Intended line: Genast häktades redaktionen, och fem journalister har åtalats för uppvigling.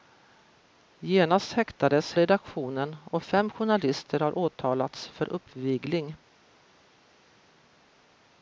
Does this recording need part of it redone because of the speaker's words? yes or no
no